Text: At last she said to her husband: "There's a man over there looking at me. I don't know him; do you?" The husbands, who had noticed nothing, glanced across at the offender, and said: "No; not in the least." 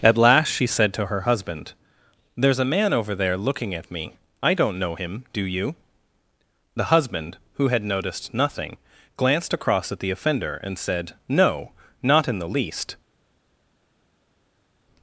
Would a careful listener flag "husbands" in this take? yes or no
yes